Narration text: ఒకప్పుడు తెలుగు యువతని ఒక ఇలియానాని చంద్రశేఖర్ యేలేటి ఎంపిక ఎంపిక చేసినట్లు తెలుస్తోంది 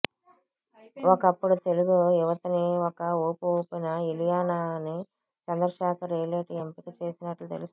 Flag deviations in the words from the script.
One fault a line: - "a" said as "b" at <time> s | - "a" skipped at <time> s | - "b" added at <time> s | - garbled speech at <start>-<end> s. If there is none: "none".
- "ఊపు ఊపిన" added at 3.2 s
- "ఎంపిక" skipped at 6.9 s